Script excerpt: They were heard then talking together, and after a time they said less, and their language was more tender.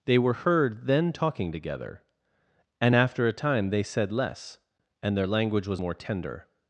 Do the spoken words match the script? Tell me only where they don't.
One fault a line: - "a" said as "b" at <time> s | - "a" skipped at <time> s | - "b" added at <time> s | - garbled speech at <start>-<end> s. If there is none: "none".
none